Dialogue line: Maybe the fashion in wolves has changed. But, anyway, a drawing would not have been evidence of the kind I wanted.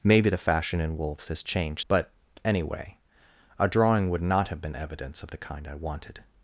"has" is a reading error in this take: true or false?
false